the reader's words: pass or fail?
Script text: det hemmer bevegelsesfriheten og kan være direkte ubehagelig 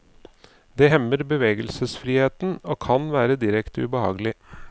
pass